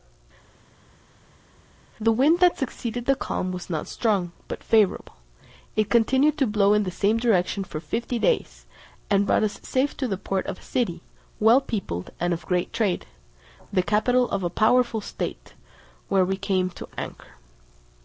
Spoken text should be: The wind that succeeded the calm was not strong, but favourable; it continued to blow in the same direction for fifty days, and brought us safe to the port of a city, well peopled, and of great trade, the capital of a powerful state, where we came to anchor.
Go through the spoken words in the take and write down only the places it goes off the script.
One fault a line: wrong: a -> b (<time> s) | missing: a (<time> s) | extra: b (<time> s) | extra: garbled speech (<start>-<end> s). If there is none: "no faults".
no faults